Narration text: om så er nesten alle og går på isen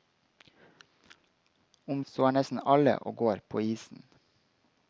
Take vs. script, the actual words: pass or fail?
pass